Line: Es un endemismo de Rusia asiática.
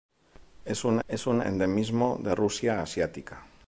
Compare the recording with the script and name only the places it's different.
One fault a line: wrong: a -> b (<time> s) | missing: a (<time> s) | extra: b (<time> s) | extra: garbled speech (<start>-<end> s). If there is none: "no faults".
extra: es un (1.1 s)